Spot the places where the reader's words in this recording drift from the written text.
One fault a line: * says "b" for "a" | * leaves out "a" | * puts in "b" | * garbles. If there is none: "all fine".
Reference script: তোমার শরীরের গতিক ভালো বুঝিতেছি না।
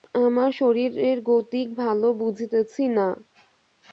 * says "আমার" for "তোমার"